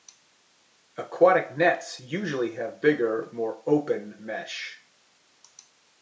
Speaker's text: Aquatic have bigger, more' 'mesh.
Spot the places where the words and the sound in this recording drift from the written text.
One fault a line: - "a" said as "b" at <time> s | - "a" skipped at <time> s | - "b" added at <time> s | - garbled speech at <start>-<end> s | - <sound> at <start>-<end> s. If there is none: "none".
- "nets usually" added at 1.6 s
- "open" added at 3.7 s